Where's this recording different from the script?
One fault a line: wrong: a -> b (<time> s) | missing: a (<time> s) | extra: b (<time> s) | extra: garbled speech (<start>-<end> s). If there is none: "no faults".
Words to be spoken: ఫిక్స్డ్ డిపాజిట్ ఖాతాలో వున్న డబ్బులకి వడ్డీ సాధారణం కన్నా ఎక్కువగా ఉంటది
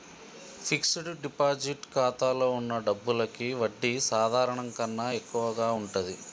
no faults